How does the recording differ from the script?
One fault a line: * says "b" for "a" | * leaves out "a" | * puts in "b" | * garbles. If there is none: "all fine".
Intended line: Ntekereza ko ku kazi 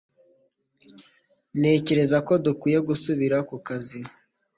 * puts in "dukwiye gusubira"